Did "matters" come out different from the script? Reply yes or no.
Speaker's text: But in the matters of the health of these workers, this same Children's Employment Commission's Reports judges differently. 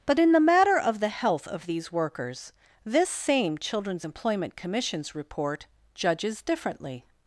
yes